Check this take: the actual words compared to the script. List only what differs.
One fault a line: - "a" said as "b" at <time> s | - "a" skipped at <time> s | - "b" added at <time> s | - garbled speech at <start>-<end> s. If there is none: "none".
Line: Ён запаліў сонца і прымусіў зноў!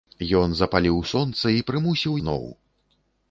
none